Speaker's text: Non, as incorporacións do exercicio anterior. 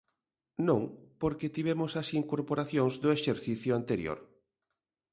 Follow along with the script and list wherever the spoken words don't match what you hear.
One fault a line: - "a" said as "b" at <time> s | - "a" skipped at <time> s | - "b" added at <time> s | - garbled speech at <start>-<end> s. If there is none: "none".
- "porque tivemos" added at 1.2 s